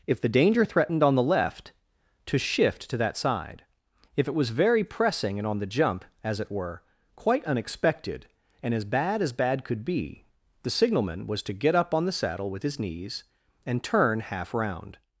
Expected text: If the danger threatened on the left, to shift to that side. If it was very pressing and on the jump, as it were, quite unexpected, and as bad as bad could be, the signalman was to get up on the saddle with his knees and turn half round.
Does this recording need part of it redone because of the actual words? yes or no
no